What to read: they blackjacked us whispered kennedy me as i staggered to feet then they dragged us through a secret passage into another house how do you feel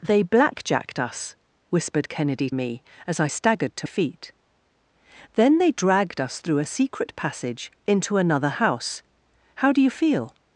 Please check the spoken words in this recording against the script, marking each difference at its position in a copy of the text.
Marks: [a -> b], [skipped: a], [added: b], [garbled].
they blackjacked us whispered kennedy me as i staggered to feet then they dragged us through a secret passage into another house how do you feel